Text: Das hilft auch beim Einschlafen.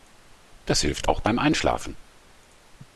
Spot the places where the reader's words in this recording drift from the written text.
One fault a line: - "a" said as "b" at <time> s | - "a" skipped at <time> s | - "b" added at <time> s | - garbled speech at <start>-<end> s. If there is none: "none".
none